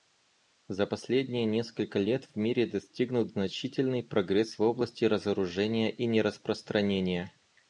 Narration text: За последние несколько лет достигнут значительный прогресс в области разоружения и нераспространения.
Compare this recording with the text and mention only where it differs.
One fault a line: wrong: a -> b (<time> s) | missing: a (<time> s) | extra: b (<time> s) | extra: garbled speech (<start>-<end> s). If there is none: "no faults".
extra: в мире (2.2 s)